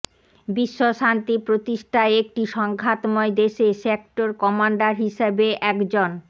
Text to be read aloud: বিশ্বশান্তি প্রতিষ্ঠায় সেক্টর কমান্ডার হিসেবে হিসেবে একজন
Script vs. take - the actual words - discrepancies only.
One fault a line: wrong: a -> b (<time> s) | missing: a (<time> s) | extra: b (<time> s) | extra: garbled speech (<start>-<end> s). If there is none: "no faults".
extra: একটি সংঘাতময় দেশে (2.2 s)
missing: হিসেবে (5.5 s)